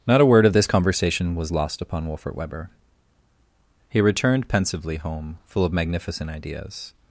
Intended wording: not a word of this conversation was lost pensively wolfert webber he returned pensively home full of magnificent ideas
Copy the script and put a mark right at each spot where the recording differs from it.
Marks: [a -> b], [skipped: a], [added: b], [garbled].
not a word of this conversation was lost [pensively -> upon] wolfert webber he returned pensively home full of magnificent ideas